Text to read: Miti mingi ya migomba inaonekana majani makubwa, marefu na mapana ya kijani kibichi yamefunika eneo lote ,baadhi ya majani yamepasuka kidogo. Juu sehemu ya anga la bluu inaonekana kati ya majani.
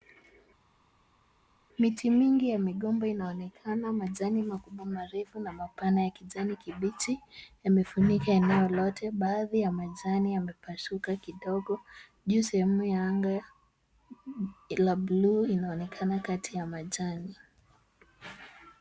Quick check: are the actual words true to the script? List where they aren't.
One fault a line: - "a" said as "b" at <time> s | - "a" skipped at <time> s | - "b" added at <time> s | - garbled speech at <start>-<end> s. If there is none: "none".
none